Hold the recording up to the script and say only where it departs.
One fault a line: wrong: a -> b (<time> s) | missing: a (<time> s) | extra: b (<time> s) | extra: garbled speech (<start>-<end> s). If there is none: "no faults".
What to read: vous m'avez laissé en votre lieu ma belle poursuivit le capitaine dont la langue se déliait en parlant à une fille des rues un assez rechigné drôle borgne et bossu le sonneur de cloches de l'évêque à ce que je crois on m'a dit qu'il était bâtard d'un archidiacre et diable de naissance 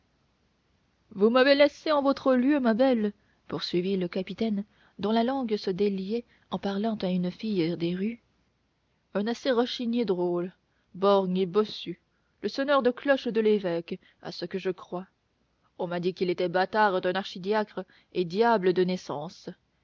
no faults